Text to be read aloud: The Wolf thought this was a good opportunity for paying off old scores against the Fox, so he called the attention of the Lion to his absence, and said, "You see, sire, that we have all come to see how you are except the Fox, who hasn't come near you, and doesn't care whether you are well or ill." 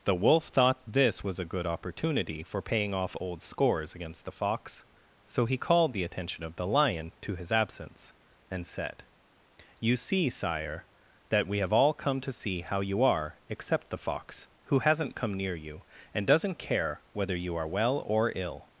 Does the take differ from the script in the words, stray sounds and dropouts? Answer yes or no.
no